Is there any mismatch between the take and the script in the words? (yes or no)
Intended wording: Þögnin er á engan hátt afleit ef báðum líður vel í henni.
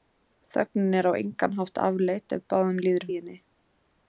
yes